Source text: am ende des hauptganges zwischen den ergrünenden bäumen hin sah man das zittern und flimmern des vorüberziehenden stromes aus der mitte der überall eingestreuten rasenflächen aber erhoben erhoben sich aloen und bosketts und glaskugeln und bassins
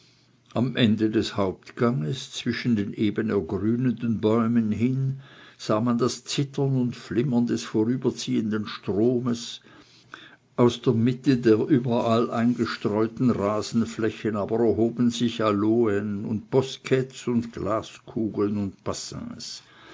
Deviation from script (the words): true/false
true